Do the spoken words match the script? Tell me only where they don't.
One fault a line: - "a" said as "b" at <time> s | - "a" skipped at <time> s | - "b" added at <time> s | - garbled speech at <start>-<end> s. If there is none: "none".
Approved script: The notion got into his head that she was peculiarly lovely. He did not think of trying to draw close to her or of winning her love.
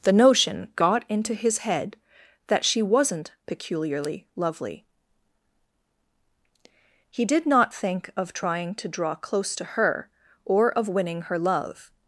- "was" said as "wasn't" at 2.8 s